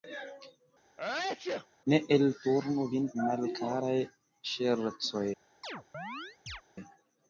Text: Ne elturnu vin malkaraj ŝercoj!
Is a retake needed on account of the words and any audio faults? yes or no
yes